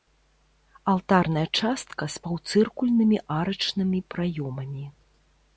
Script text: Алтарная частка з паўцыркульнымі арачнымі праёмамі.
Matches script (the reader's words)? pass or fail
pass